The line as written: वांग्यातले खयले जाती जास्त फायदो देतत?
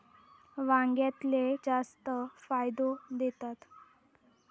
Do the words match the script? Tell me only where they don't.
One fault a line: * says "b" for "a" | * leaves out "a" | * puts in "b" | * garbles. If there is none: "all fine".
* leaves out "खयले जाती"